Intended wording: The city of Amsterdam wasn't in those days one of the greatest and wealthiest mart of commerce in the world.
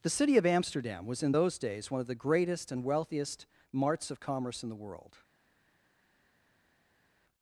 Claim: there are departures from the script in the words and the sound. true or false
true